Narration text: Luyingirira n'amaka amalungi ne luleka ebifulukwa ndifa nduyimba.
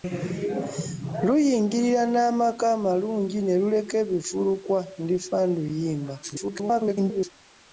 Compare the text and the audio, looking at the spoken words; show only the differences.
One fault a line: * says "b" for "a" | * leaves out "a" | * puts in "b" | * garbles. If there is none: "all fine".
* garbles